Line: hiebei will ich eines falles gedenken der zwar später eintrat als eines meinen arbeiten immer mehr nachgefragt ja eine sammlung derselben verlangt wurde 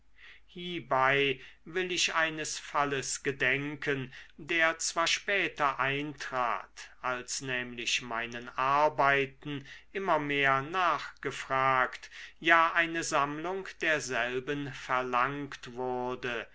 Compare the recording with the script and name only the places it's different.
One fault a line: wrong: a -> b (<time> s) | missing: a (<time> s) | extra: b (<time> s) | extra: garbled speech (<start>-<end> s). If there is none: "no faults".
wrong: eines -> nämlich (7.4 s)